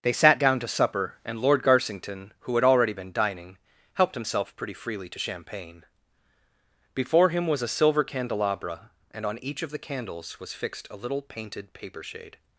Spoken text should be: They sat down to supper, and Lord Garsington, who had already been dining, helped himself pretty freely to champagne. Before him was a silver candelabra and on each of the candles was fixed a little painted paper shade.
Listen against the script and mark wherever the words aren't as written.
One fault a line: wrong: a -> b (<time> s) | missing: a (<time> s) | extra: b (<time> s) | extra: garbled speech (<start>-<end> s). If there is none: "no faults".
no faults